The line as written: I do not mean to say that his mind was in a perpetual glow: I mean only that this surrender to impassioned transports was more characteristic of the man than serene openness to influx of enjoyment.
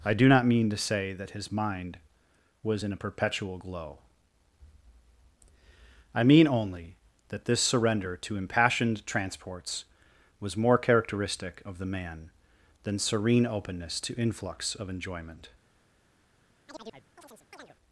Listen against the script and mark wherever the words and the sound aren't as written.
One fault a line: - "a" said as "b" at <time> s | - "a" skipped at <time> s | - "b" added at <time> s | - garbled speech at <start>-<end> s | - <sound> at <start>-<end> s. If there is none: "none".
- chirp at 16.7-17.8 s